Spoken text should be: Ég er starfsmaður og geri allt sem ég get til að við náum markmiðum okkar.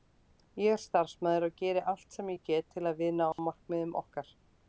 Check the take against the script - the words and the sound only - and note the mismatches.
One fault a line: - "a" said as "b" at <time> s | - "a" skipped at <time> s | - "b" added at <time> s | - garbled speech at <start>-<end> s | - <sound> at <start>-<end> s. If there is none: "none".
- dropout at 3.3-3.4 s